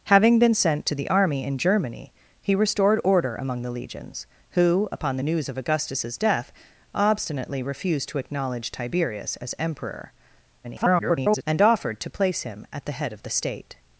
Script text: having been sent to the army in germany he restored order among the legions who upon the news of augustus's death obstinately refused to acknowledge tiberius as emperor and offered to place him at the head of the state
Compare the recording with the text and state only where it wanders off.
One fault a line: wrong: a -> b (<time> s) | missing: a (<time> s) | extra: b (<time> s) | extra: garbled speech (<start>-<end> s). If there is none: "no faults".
extra: garbled speech (10.6-11.4 s)